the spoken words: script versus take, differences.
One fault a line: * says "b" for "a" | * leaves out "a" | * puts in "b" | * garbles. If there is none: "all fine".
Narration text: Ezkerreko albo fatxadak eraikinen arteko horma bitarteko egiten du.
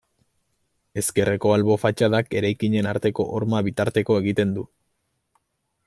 all fine